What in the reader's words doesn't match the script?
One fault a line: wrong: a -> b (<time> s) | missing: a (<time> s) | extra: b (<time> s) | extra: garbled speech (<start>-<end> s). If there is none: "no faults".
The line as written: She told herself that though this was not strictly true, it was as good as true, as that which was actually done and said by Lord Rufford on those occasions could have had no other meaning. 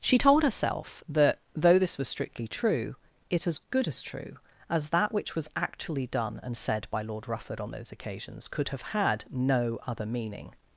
missing: not (2.1 s)
missing: was (3.5 s)